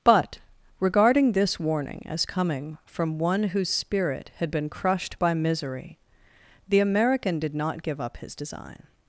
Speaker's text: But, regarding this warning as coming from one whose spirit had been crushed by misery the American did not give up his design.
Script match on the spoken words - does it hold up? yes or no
yes